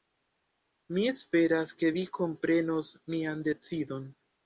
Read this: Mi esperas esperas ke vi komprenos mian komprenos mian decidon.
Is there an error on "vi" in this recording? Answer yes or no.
no